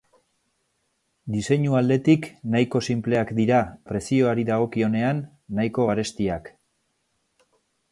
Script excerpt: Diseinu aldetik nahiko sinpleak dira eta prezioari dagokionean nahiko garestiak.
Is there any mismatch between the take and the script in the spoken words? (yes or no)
yes